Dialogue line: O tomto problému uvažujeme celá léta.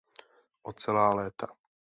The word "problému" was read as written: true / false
false